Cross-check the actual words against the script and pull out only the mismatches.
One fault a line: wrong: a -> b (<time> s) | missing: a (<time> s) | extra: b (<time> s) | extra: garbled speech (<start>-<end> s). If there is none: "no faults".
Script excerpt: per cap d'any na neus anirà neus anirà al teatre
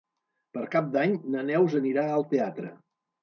missing: neus anirà (2.0 s)